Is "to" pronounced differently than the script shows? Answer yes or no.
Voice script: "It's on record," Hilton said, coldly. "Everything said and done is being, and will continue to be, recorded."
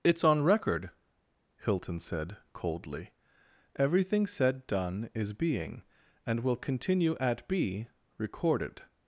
yes